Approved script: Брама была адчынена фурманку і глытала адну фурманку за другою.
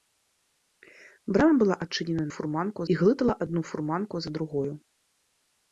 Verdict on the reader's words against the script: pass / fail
pass